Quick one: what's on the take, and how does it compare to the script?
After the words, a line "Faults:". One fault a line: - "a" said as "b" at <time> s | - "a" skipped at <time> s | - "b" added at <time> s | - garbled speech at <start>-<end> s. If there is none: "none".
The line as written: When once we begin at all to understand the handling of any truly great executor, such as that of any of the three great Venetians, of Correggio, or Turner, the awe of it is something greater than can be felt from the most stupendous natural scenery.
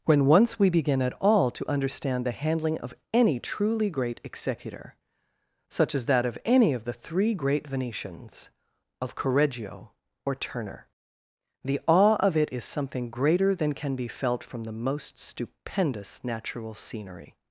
When once we begin at all to understand the handling of any truly great executor, such as that of any of the three great Venetians, of Correggio, or Turner, the awe of it is something greater than can be felt from the most stupendous natural scenery.
Faults:
none